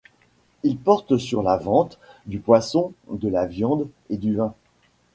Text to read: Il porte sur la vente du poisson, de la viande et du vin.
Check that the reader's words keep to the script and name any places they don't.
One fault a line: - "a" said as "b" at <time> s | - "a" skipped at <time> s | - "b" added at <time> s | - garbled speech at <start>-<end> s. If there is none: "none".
none